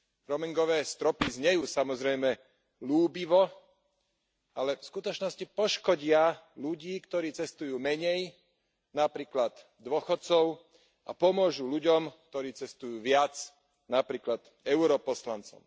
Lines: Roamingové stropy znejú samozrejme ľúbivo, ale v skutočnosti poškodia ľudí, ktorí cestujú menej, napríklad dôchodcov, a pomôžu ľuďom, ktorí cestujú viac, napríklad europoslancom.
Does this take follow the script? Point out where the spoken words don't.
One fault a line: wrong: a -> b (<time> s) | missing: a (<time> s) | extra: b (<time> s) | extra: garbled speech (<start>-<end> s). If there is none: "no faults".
no faults